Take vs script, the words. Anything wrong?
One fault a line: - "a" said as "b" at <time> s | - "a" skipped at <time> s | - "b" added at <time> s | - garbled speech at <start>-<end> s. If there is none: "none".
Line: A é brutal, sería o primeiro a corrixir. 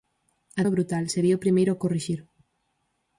none